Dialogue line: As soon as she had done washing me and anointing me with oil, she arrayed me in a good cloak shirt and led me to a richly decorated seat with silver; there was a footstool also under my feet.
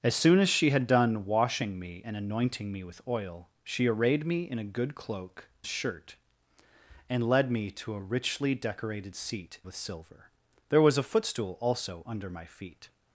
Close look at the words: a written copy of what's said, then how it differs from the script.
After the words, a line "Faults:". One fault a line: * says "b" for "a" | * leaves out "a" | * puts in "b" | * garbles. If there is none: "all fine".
As soon as she had done washing me and anointing me with oil, she arrayed me in a good cloak shirt and led me to a richly decorated seat with silver; there was a footstool also under my feet.
Faults:
all fine